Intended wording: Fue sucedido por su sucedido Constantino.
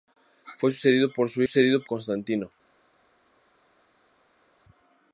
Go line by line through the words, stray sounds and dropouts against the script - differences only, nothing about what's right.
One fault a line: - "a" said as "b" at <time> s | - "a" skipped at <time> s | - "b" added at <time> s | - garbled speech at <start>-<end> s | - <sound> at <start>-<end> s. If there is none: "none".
none